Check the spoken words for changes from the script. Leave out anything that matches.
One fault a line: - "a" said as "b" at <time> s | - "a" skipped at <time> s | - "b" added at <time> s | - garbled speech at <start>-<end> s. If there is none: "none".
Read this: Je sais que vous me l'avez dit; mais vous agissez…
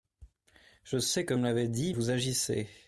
- "vous" skipped at 1.4 s
- "mais" skipped at 2.0 s